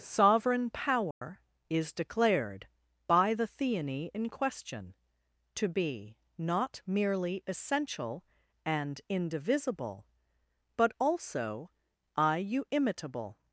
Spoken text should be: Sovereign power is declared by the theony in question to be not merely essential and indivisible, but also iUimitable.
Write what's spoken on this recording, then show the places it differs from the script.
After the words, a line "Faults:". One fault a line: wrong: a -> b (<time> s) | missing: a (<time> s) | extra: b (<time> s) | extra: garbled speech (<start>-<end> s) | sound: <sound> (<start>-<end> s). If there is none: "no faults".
Sovereign power is declared by the theony in question to be not merely essential and indivisible, but also iUimitable.
Faults:
sound: dropout (1.1-1.2 s)